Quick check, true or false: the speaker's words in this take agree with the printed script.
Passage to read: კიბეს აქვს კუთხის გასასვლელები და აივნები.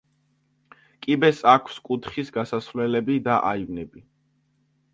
true